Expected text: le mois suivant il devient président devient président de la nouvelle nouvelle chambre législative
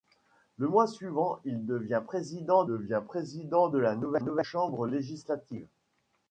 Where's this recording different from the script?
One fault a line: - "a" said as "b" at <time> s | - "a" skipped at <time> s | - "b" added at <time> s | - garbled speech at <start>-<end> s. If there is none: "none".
none